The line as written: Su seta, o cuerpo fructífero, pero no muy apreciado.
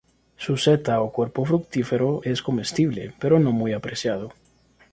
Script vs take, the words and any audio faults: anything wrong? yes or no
yes